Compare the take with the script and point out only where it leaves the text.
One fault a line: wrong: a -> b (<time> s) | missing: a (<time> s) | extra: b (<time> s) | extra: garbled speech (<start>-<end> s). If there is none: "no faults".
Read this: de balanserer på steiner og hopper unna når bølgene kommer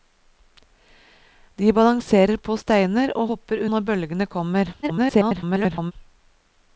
missing: unna (3.6 s)
extra: garbled speech (4.8-5.9 s)